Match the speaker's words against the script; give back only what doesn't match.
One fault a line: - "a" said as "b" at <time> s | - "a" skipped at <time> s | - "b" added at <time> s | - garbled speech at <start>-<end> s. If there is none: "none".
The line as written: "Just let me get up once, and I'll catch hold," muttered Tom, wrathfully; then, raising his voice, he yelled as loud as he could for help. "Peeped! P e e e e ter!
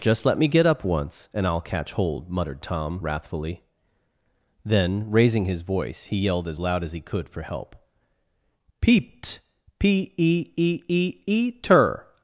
none